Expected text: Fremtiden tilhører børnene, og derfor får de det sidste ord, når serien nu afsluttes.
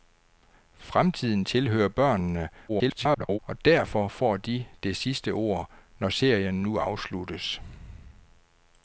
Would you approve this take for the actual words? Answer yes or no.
no